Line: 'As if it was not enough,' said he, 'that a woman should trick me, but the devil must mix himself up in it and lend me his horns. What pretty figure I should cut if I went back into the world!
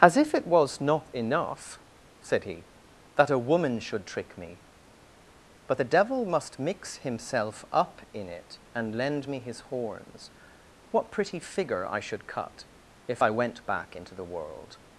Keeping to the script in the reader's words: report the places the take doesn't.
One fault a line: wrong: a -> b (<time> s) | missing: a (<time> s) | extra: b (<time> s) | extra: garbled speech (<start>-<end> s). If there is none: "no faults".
no faults